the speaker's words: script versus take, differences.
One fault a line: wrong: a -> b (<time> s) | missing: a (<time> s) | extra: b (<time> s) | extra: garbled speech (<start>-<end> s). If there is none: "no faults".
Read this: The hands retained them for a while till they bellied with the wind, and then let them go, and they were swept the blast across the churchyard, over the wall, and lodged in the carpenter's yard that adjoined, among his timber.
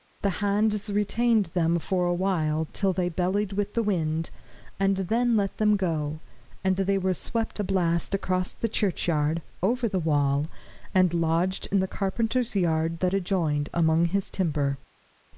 no faults